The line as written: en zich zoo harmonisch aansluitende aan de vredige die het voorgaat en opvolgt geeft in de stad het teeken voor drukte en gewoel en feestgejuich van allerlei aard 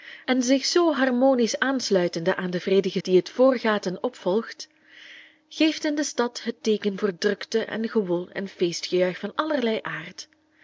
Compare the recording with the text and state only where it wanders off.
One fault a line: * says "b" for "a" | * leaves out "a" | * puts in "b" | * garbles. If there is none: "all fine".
all fine